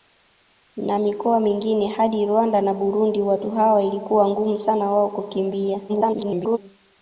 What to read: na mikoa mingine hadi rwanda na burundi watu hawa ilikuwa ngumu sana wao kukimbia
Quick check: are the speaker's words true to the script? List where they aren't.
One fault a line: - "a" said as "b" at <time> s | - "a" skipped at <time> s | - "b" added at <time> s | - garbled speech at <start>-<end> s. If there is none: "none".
- garbled speech at 5.9-6.6 s